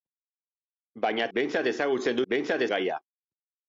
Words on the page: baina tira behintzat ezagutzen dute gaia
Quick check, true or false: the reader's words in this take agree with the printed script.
false